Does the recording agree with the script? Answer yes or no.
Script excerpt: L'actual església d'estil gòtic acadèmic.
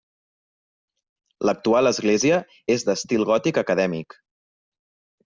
no